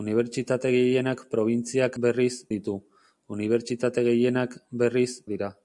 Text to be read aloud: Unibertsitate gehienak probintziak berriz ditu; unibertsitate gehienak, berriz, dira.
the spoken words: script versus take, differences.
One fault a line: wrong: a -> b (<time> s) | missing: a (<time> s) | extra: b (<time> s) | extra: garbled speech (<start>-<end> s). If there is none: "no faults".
no faults